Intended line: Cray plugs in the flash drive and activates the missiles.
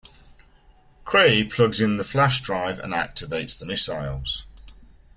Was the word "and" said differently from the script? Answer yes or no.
no